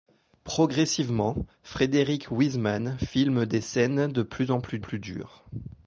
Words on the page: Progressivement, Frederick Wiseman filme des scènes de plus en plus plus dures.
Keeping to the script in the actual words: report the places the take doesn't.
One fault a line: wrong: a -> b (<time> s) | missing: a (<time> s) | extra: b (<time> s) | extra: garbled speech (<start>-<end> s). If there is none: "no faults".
no faults